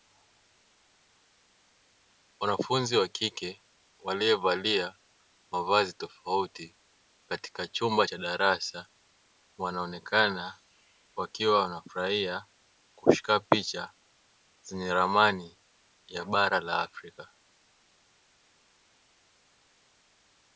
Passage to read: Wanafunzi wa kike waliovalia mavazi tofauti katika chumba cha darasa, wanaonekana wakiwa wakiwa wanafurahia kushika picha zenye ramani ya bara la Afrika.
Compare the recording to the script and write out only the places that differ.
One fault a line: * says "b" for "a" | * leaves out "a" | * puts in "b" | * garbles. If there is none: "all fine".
* leaves out "wakiwa"